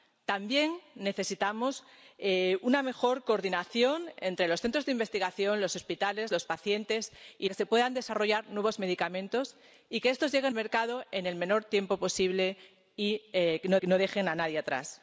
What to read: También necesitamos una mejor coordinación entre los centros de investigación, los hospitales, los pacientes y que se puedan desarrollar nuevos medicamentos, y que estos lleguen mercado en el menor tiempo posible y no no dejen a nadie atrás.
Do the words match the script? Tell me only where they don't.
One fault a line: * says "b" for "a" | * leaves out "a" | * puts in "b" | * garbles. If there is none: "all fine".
all fine